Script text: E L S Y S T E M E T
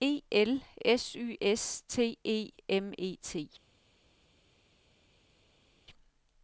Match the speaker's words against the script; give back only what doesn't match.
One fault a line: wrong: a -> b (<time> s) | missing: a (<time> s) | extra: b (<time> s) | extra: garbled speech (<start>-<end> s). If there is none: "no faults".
no faults